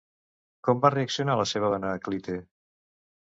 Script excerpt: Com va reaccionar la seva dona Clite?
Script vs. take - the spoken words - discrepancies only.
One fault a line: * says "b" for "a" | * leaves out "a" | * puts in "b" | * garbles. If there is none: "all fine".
all fine